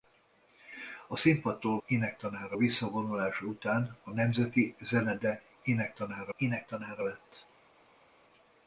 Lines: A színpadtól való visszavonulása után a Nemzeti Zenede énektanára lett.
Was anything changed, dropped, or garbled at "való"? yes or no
yes